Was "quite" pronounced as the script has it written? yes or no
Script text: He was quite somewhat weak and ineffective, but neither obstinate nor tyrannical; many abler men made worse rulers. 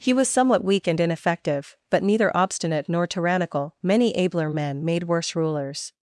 no